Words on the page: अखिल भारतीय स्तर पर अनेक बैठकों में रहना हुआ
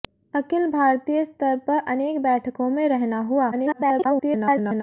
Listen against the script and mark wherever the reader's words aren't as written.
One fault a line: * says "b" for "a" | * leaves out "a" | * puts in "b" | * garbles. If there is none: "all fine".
* garbles